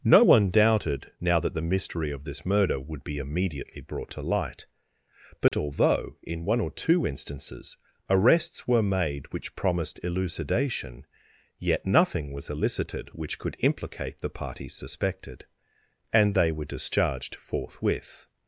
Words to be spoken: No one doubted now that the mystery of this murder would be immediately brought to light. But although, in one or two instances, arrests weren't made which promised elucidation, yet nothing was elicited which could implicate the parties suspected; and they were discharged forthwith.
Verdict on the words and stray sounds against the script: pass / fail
fail